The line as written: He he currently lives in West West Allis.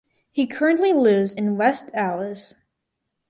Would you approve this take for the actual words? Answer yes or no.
no